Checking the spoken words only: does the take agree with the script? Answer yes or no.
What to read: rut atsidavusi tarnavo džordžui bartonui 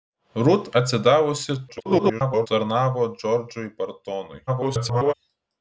no